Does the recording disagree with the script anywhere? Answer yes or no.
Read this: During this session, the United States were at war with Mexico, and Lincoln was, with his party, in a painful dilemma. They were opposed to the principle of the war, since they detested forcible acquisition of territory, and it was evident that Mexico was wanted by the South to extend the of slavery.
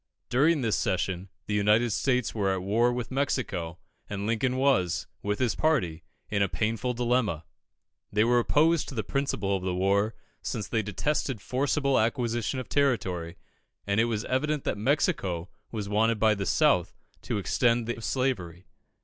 no